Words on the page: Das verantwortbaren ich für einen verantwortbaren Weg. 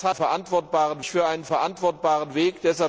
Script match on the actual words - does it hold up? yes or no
yes